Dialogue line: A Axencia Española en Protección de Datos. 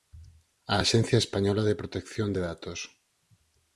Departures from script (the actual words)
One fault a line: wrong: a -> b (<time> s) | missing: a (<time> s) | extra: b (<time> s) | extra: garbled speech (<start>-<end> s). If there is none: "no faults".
wrong: en -> de (1.6 s)